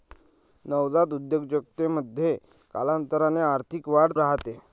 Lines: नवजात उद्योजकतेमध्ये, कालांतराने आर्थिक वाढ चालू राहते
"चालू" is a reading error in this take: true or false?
true